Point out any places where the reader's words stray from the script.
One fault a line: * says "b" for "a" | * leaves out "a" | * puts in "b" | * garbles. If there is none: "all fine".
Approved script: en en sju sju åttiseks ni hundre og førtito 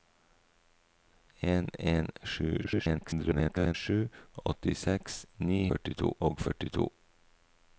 * garbles
* says "førtito" for "hundre"